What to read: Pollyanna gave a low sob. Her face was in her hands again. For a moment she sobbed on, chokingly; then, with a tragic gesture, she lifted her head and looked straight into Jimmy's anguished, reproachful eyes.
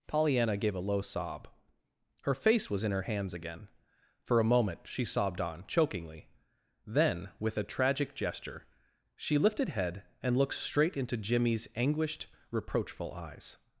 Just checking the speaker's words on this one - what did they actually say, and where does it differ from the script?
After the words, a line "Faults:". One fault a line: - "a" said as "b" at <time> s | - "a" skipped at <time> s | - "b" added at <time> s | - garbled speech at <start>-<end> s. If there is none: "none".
Pollyanna gave a low sob. Her face was in her hands again. For a moment she sobbed on, chokingly; then, with a tragic gesture, she lifted head and looked straight into Jimmy's anguished, reproachful eyes.
Faults:
- "her" skipped at 9.7 s